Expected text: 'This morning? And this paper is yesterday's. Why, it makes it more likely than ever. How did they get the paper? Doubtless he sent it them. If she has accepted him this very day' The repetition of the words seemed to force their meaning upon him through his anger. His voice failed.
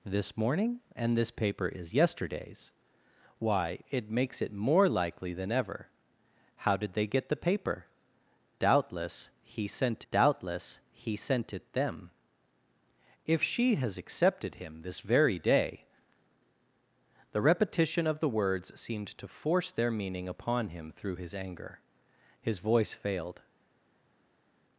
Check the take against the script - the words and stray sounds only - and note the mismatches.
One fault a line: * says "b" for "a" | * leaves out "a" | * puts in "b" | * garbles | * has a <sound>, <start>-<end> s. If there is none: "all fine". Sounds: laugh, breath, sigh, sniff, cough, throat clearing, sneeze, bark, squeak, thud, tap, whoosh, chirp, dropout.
* puts in "doubtless he sent"